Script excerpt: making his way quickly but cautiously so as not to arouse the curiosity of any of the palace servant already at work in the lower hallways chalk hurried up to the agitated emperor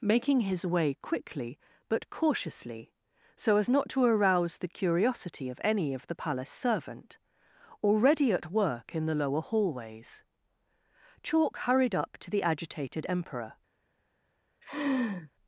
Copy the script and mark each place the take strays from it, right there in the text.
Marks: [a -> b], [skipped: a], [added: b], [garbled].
making his way quickly but cautiously so as not to arouse the curiosity of any of the palace servant already at work in the lower hallways chalk hurried up to the agitated emperor